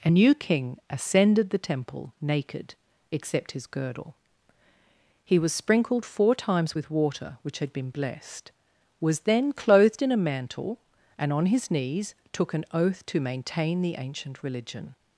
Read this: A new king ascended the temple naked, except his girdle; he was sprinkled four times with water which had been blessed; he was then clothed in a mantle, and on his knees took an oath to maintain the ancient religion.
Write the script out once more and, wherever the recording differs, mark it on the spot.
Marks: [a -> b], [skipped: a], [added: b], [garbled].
A new king ascended the temple naked, except his girdle; he was sprinkled four times with water which had been blessed; [skipped: he] was then clothed in a mantle, and on his knees took an oath to maintain the ancient religion.